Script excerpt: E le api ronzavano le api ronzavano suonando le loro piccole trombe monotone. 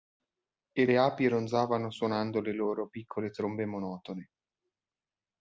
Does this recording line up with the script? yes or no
no